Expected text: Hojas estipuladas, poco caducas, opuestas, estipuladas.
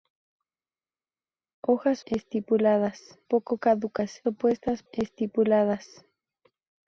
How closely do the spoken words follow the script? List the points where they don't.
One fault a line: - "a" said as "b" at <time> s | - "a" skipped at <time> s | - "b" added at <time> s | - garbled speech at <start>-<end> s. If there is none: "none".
none